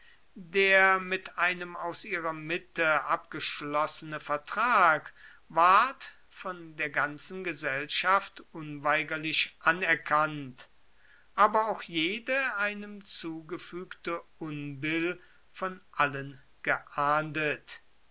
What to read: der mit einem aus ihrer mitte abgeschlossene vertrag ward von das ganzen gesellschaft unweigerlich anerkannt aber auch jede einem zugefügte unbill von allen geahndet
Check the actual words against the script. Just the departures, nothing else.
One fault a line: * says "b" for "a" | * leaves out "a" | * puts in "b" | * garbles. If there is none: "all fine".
* says "der" for "das"